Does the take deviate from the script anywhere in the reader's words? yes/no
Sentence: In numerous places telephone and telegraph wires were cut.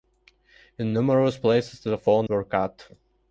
yes